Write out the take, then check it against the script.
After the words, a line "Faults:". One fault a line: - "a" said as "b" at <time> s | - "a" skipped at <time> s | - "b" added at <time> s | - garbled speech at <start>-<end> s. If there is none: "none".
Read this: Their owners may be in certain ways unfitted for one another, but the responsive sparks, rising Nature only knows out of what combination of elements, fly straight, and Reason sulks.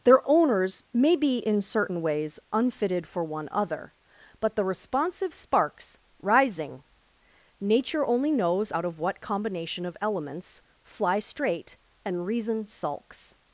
Their owners may be in certain ways unfitted for one other, but the responsive sparks, rising Nature only knows out of what combination of elements, fly straight, and Reason sulks.
Faults:
- "another" said as "other" at 3.5 s